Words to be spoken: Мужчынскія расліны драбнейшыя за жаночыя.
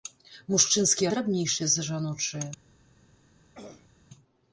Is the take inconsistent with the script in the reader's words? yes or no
yes